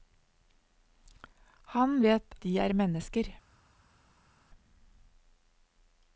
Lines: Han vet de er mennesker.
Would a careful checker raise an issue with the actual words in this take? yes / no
no